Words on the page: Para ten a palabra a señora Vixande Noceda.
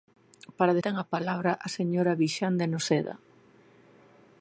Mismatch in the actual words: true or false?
false